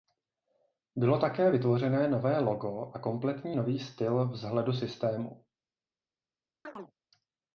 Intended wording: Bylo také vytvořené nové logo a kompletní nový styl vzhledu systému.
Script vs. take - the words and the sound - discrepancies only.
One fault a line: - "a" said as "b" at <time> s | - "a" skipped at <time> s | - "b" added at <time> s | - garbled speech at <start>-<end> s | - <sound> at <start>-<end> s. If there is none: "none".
- chirp at 6.6-6.9 s